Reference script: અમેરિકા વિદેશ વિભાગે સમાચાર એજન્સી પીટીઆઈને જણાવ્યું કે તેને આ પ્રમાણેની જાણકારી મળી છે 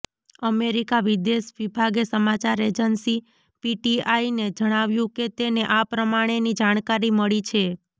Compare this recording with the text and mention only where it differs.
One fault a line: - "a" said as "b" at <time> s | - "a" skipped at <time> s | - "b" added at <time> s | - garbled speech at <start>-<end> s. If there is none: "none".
none